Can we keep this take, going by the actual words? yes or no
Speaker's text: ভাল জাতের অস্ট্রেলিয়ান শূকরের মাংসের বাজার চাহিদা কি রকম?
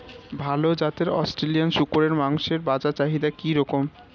yes